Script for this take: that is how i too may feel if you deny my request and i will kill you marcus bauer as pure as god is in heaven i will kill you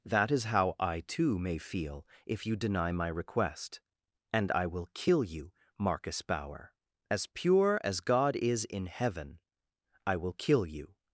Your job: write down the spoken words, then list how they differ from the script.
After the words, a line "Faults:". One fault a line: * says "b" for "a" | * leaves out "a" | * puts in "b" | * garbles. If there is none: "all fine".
that is how i too may feel if you deny my request and i will kill you marcus bauer as pure as god is in heaven i will kill you
Faults:
all fine